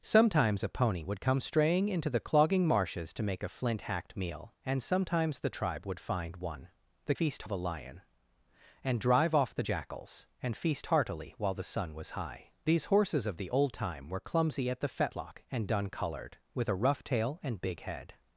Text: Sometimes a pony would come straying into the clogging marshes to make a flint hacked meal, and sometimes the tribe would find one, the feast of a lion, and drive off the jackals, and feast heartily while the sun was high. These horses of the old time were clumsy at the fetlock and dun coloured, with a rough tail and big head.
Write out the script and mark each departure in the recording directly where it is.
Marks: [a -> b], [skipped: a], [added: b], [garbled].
Sometimes a pony would come straying into the clogging marshes to make a flint hacked meal, and sometimes the tribe would find one, the feast of a lion, and drive off the jackals, and feast heartily while the sun was high. These horses of the old time were clumsy at the fetlock and dun coloured, with a rough tail and big head.